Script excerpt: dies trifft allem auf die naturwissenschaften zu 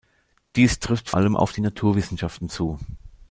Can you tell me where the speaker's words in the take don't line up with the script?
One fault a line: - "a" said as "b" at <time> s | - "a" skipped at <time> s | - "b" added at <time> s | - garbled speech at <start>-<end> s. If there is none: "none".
none